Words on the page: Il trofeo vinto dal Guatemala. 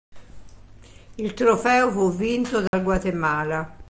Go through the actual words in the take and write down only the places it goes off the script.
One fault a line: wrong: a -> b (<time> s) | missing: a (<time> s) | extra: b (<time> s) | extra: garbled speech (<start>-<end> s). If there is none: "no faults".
extra: fu (1.9 s)